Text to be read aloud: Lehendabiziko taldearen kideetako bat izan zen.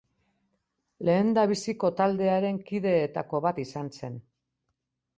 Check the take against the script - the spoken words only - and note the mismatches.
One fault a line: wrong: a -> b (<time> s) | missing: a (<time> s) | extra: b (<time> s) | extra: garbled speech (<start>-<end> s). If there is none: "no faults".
no faults